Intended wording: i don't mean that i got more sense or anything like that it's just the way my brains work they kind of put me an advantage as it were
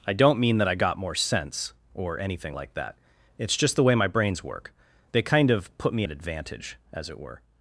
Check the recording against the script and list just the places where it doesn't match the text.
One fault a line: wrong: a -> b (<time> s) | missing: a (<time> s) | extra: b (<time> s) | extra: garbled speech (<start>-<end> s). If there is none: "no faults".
no faults